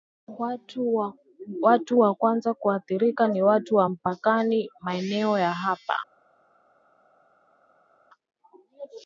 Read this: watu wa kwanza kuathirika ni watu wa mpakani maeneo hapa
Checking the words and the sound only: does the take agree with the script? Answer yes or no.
no